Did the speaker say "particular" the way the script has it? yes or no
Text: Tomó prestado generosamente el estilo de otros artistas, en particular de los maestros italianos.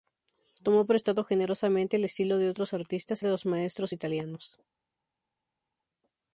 no